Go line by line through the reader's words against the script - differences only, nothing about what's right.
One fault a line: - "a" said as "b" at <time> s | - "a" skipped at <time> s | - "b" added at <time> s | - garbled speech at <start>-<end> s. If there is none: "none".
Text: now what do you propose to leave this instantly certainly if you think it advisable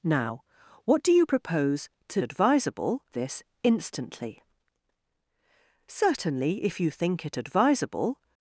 - "leave" said as "advisable" at 2.2 s